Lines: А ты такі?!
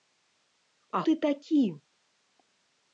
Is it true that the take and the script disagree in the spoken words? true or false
false